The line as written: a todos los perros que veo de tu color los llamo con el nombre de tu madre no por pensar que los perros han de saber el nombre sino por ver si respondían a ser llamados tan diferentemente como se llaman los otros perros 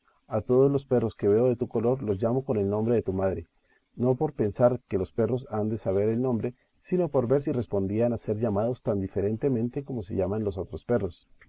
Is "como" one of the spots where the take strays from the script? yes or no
no